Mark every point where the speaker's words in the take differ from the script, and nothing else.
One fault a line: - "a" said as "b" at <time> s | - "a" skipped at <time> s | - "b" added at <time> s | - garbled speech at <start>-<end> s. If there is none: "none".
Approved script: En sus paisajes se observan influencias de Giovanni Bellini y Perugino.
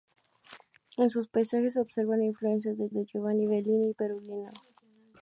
- "de" added at 2.9 s